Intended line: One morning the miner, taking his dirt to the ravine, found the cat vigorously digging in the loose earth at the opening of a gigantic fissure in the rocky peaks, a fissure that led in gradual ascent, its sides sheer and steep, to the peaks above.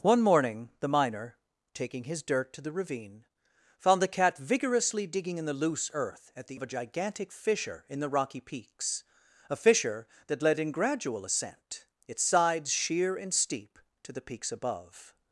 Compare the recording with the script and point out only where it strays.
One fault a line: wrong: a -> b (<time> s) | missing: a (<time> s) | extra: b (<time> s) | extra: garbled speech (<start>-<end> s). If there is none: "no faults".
missing: opening (6.6 s)